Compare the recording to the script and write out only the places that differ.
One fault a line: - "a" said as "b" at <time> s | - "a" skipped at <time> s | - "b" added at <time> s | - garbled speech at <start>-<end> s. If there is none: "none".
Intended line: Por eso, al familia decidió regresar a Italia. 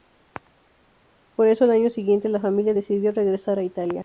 - "año siguiente la" added at 1.7 s